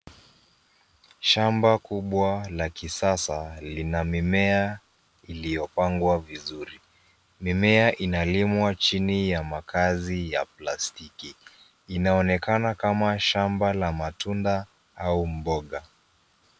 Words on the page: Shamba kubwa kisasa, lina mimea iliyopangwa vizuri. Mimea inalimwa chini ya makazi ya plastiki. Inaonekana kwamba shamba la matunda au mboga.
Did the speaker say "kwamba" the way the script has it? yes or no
no